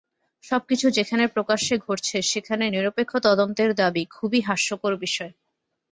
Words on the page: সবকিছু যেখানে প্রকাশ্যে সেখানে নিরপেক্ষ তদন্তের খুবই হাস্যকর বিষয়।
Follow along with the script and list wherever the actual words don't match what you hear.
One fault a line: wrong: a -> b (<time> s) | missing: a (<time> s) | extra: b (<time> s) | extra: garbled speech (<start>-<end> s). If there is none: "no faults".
extra: ঘটছে (1.8 s)
extra: দাবি (3.7 s)